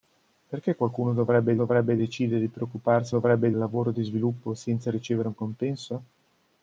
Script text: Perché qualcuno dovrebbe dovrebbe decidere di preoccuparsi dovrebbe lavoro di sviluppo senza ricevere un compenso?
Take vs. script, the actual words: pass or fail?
pass